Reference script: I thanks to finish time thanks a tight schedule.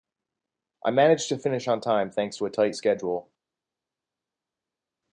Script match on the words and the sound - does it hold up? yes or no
no